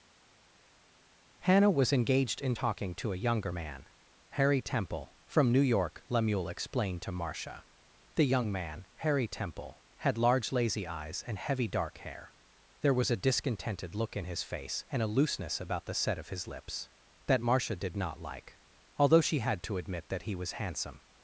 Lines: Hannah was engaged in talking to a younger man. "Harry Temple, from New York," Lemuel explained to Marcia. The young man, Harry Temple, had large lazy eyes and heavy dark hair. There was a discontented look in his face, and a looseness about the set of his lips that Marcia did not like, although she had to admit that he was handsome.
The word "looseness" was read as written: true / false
true